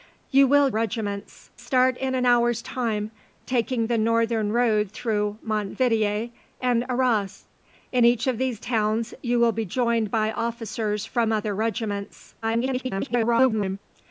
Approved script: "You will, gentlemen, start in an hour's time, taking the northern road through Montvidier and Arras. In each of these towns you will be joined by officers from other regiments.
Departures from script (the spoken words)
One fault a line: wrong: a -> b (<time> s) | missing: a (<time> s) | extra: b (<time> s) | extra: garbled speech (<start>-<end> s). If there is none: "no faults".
wrong: gentlemen -> regiments (0.7 s)
extra: garbled speech (12.4-13.8 s)